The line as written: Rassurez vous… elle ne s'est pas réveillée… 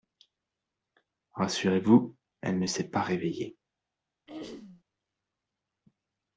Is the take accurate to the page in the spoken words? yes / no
yes